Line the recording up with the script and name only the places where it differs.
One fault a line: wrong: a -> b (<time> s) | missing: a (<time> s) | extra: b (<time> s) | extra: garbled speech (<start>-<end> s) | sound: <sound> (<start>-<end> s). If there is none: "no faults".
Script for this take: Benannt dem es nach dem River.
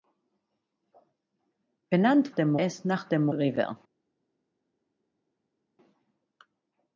no faults